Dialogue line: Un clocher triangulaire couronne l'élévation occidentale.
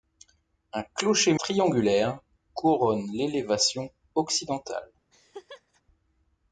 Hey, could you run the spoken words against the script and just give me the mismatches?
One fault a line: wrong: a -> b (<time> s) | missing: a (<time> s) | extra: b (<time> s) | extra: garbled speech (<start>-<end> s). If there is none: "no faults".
no faults